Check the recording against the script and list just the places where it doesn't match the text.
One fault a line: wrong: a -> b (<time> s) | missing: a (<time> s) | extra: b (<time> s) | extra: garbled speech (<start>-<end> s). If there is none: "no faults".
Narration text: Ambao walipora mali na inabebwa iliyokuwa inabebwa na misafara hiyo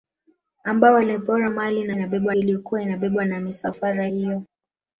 no faults